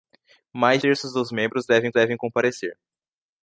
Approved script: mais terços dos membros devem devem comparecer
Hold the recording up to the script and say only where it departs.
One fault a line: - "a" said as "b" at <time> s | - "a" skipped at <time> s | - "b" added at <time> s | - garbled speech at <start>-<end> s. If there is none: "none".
none